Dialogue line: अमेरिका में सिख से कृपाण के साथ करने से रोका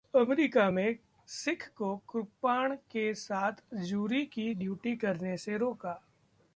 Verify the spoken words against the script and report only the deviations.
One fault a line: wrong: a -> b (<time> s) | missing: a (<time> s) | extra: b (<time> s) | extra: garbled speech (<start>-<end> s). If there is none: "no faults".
wrong: से -> को (1.8 s)
extra: जूरी की ड्यूटी (3.7 s)